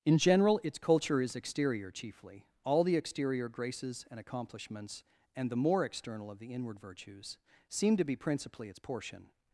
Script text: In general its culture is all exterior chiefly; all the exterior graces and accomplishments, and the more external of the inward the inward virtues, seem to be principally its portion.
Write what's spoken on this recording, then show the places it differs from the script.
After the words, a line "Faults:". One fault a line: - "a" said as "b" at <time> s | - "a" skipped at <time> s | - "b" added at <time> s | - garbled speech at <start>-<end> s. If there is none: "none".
In general its culture is exterior chiefly; all the exterior graces and accomplishments, and the more external of the inward virtues, seem to be principally its portion.
Faults:
- "all" skipped at 1.4 s
- "the inward" skipped at 6.8 s